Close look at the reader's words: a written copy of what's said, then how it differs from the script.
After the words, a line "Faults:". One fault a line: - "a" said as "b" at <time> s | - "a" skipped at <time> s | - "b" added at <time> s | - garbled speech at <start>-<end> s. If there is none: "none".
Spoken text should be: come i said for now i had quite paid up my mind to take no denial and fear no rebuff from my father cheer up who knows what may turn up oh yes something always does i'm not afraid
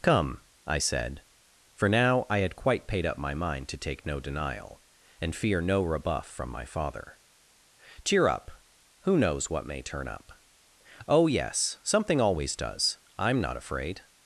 come i said for now i had quite paid up my mind to take no denial and fear no rebuff from my father cheer up who knows what may turn up oh yes something always does i'm not afraid
Faults:
none